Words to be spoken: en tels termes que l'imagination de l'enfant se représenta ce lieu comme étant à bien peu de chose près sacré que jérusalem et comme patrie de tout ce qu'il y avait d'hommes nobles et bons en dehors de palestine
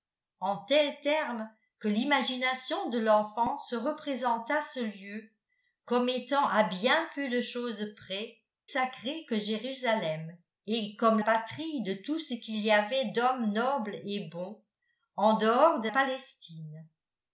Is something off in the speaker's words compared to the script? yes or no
no